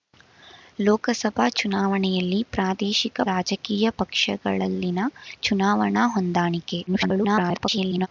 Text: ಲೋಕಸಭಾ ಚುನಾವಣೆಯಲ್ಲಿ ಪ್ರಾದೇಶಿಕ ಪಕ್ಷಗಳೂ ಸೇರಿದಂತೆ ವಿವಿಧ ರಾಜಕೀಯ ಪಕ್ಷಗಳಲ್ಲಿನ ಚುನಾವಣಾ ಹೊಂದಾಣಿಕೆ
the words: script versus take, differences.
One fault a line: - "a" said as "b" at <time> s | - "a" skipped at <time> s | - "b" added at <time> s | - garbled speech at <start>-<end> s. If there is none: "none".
- "ಪಕ್ಷಗಳೂ ಸೇರಿದಂತೆ ವಿವಿಧ" skipped at 3.2 s
- garbled speech at 6.9-8.1 s